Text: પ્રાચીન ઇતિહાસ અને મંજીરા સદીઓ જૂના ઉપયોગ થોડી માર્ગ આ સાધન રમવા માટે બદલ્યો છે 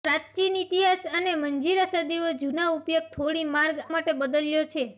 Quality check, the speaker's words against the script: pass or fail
fail